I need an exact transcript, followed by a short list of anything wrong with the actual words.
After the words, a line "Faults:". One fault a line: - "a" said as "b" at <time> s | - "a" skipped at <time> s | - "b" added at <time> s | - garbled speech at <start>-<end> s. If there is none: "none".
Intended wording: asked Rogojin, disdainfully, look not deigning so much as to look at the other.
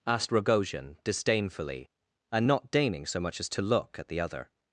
asked Rogojin, disdainfully, and not deigning so much as to look at the other.
Faults:
- "look" said as "and" at 2.3 s